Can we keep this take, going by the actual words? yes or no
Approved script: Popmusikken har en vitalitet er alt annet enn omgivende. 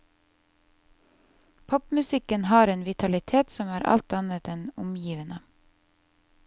no